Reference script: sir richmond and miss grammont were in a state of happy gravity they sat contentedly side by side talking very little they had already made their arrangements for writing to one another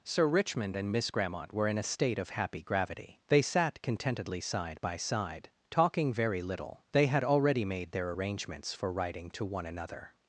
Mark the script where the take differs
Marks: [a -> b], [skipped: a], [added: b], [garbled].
sir richmond and miss grammont were in a state of happy gravity they sat contentedly side by side talking very little they had already made their arrangements for writing to one another